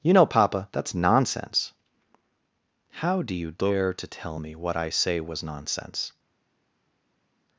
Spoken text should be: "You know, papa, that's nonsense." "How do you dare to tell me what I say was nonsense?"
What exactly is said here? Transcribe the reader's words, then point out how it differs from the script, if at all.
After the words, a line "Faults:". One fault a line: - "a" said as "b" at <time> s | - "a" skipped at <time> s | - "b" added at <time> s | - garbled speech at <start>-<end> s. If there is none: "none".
"You know, papa, that's nonsense." "How do you dare to tell me what I say was nonsense?"
Faults:
none